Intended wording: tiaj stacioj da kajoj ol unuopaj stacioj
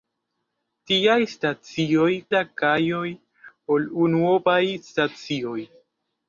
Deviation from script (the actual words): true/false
false